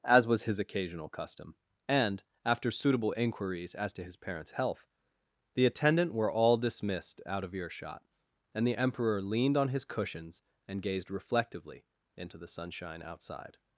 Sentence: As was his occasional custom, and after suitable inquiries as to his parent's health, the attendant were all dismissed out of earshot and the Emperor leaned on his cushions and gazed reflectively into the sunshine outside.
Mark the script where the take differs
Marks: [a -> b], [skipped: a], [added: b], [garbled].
As was his occasional custom, and after suitable inquiries as to his parent's health, the attendant were all dismissed out of earshot and the Emperor leaned on his cushions and gazed reflectively into the sunshine outside.